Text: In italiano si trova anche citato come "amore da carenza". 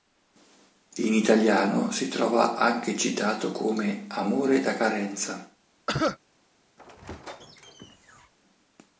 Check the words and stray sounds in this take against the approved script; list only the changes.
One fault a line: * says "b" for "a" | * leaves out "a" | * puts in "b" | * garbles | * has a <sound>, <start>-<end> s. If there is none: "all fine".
* has a cough, 5.9-6.2 s
* has a squeak, 6.8-8.3 s